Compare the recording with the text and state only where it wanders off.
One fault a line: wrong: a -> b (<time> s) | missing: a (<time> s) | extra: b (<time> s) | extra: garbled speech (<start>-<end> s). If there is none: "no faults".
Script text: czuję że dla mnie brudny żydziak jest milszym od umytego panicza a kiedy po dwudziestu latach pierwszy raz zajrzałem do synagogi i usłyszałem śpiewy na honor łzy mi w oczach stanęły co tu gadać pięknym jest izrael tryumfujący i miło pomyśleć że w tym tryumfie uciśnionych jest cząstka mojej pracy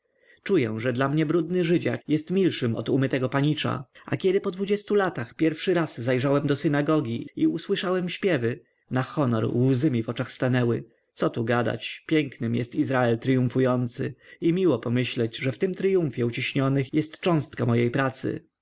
no faults